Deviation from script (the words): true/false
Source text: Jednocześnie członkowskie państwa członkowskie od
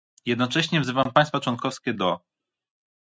true